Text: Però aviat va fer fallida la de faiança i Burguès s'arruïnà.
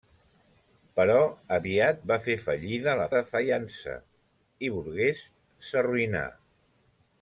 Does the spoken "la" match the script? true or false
true